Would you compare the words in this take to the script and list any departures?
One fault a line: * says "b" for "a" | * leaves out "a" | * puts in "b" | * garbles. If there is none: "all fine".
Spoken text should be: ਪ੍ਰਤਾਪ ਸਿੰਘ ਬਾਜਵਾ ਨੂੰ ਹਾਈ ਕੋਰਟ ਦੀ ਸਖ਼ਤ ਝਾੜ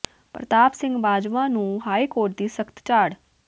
all fine